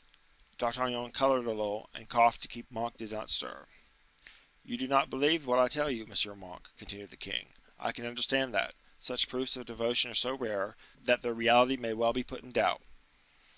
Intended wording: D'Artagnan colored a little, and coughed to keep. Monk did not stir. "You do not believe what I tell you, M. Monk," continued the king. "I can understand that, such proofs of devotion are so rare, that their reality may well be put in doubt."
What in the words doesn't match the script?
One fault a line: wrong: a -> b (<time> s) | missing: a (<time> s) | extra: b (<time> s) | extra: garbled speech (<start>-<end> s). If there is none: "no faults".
no faults